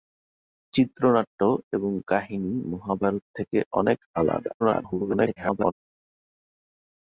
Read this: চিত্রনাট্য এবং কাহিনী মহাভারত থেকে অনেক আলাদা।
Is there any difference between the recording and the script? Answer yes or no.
yes